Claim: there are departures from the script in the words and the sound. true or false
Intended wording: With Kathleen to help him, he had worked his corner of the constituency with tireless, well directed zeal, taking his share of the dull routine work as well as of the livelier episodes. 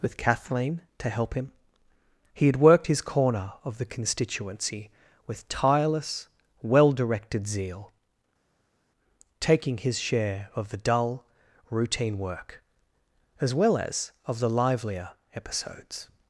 false